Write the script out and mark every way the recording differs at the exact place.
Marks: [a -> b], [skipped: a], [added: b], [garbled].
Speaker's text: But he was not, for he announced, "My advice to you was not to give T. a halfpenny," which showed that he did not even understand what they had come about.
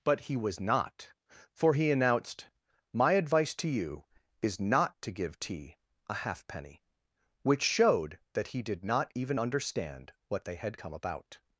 But he was not, for he announced, "My advice to you [was -> is] not to give T. a halfpenny," which showed that he did not even understand what they had come about.